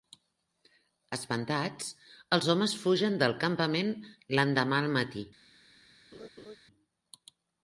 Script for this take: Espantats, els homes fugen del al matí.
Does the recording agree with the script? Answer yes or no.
no